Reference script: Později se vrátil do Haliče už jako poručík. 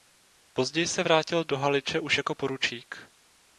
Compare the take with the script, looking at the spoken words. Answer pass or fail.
pass